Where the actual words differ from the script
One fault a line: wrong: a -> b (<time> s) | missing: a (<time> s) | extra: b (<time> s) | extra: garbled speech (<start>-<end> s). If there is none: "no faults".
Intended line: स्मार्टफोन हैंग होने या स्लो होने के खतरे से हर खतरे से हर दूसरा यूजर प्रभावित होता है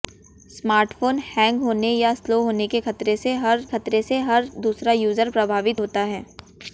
no faults